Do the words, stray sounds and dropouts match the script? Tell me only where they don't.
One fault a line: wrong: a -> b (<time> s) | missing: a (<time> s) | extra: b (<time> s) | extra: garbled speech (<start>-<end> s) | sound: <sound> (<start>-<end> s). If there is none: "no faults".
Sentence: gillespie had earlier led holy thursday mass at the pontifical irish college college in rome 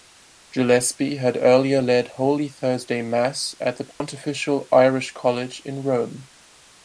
sound: dropout (3.9-4.0 s)
missing: college (5.6 s)